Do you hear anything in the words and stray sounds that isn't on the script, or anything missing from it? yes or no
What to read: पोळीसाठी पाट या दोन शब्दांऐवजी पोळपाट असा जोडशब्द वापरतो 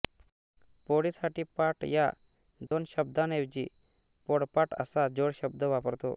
yes